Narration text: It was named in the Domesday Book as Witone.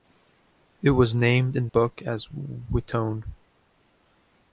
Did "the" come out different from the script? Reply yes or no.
yes